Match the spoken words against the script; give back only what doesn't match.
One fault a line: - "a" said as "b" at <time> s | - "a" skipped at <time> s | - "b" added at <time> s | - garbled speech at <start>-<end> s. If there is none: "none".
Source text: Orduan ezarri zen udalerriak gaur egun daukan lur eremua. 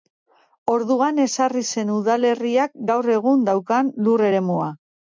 none